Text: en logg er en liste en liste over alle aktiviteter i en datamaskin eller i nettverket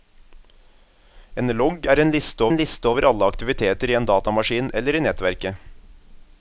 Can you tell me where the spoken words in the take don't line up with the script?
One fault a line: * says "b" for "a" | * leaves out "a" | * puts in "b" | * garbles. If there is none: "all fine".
all fine